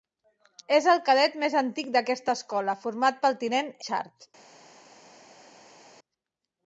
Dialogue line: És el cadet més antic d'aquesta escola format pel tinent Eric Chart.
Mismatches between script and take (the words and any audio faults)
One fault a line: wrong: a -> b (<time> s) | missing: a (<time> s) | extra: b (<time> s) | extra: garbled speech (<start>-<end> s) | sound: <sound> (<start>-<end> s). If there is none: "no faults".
missing: Eric (3.7 s)